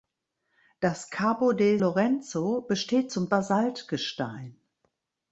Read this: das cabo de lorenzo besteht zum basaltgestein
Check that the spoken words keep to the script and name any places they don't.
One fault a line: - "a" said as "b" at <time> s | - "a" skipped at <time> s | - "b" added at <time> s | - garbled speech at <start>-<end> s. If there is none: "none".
none